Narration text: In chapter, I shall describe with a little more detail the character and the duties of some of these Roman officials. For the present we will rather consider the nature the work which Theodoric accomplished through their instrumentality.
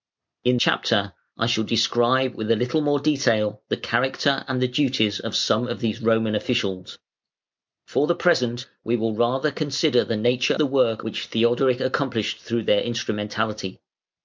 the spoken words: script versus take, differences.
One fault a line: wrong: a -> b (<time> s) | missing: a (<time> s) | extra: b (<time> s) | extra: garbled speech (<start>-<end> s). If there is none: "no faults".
no faults